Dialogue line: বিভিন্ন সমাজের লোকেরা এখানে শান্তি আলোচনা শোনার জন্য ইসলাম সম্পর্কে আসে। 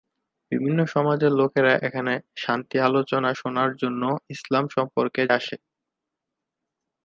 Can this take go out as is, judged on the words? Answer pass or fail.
pass